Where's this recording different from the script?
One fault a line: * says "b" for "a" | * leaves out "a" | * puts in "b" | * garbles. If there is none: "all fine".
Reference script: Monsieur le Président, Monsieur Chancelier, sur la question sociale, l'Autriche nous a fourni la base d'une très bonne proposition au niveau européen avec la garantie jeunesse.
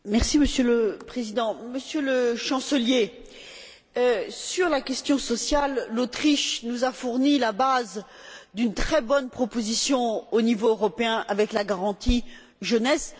* puts in "le"